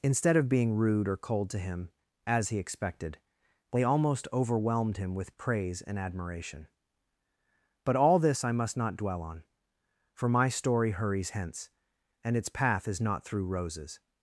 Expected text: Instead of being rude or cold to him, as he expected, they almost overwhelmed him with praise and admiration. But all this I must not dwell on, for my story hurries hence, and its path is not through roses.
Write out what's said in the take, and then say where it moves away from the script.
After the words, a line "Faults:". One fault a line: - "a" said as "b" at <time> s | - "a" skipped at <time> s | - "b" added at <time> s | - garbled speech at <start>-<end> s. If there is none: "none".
Instead of being rude or cold to him, as he expected, they almost overwhelmed him with praise and admiration. But all this I must not dwell on, for my story hurries hence, and its path is not through roses.
Faults:
none